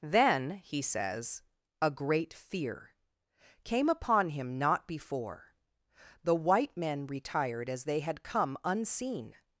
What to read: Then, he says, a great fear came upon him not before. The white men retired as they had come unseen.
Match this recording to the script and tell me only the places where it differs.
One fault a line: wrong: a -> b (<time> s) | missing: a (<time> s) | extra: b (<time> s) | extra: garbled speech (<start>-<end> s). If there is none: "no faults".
no faults